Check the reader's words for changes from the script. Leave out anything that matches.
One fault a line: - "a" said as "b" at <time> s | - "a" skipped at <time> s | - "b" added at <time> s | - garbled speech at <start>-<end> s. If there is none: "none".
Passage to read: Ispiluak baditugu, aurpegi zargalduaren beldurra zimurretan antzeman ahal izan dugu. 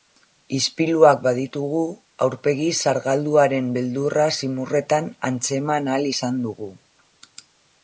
none